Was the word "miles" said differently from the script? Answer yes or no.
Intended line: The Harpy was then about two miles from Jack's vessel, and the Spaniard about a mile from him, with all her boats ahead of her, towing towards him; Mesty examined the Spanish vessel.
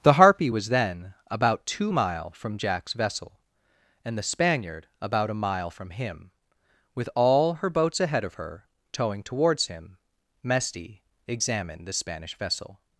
yes